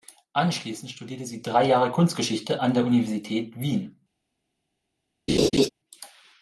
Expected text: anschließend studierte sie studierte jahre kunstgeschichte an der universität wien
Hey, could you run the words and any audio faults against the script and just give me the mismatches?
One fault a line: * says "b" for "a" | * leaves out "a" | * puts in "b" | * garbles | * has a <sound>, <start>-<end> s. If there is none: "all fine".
* says "drei" for "studierte"
* has a laugh, 5.3-5.7 s